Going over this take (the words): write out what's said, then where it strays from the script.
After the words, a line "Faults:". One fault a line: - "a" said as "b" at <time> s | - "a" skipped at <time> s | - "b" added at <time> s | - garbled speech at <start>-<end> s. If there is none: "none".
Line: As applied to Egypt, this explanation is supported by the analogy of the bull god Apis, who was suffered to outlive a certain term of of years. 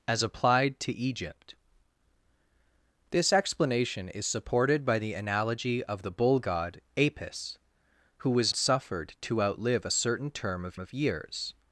As applied to Egypt, this explanation is supported by the analogy of the bull god Apis, who was suffered to outlive a certain term of of years.
Faults:
none